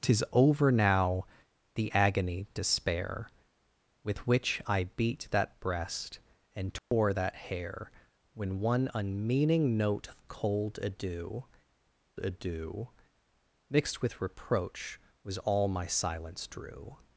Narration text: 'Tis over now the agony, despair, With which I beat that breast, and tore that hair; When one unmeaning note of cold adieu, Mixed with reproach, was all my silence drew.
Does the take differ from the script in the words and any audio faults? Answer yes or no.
yes